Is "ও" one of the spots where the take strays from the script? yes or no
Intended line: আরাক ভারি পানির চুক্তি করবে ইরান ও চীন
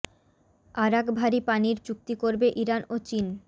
no